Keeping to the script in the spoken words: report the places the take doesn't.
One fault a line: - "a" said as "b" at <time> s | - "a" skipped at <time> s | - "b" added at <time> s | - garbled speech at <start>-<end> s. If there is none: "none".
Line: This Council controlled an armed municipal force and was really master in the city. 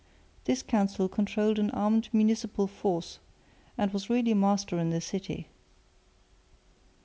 none